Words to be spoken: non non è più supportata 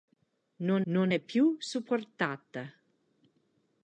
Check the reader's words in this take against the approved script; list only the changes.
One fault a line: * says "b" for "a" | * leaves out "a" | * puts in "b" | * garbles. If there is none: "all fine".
all fine